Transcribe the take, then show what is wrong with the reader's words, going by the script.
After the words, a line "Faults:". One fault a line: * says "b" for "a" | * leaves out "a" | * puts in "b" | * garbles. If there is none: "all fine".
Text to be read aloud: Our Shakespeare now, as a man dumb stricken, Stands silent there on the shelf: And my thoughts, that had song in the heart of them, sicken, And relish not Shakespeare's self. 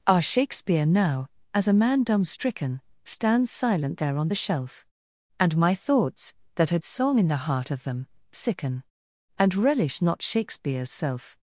Our Shakespeare now, as a man dumb stricken, Stands silent there on the shelf: And my thoughts, that had song in the heart of them, sicken, And relish not Shakespeare's self.
Faults:
all fine